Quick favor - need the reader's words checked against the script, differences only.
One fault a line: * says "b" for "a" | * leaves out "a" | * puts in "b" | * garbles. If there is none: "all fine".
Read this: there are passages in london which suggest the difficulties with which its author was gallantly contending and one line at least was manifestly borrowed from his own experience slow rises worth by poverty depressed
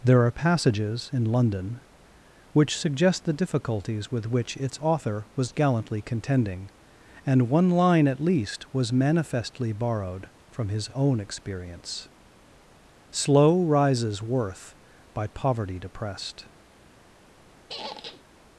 all fine